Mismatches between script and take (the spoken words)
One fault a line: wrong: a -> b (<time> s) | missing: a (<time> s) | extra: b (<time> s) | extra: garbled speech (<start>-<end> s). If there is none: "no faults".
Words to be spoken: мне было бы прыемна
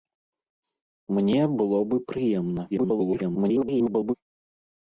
extra: garbled speech (2.7-4.1 s)